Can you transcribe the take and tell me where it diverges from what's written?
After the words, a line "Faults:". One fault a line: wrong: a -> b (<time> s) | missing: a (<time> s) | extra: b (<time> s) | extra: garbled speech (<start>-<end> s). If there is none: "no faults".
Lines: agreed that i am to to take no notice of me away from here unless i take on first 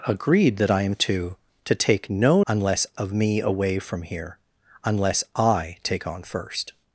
agreed that i am to to take no unless of me away from here unless i take on first
Faults:
wrong: notice -> unless (2.5 s)